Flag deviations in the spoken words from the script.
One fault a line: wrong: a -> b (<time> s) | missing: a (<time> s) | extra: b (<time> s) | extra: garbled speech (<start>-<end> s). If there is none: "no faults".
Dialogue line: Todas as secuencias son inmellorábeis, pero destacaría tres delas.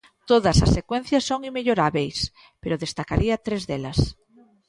no faults